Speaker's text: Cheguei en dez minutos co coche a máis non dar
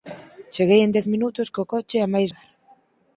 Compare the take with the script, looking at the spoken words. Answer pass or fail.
fail